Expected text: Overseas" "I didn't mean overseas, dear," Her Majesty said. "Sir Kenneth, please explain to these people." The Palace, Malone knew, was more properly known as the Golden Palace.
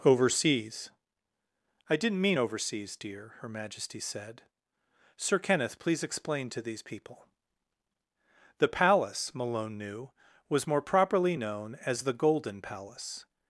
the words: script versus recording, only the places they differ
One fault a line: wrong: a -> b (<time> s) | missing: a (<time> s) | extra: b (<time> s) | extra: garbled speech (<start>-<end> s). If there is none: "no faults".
no faults